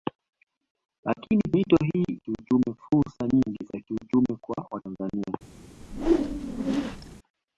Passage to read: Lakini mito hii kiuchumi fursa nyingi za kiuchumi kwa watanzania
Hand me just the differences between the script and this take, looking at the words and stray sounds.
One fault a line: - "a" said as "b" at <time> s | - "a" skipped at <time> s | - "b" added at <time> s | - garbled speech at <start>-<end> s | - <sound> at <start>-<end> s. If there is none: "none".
- whoosh at 5.8-7.2 s